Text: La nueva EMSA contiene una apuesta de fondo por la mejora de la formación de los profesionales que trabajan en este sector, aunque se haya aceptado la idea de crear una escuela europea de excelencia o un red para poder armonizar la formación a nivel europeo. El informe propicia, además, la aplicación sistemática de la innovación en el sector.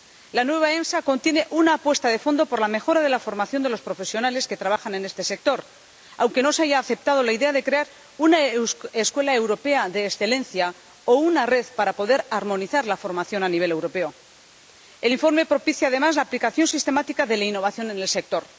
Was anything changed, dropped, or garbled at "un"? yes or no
yes